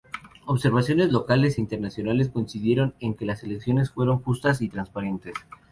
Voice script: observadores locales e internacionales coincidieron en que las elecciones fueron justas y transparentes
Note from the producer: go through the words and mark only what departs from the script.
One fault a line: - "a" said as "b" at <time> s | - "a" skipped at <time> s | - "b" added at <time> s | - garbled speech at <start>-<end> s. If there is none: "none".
none